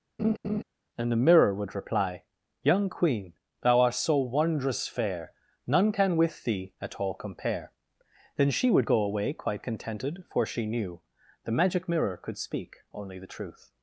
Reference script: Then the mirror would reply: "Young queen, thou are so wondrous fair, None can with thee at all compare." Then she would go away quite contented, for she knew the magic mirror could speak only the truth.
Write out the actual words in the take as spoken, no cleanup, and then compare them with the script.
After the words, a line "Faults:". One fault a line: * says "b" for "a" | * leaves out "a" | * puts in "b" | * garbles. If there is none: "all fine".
And the mirror would reply: "Young queen, thou art so wondrous fair, None can with thee at all compare." Then she would go away quite contented, for she knew the magic mirror could speak only the truth.
Faults:
* says "And" for "Then"
* says "art" for "are"